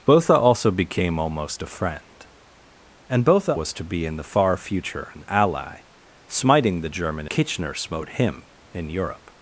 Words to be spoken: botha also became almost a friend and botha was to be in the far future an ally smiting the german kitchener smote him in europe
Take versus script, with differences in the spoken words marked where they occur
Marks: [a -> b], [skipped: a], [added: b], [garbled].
botha also became almost a friend and botha was to be in the far future an ally smiting the german kitchener smote him in europe